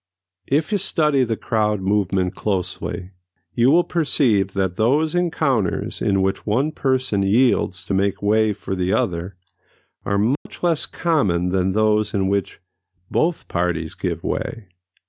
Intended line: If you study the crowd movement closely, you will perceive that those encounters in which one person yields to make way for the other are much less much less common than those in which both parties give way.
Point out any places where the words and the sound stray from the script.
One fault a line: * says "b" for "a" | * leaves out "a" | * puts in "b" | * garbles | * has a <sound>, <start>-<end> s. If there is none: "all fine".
* has a dropout, 10.3-10.5 s
* leaves out "much less"